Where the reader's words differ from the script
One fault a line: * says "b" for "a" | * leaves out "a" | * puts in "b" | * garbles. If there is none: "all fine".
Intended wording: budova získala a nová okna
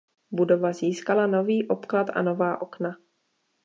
* puts in "nový obklad"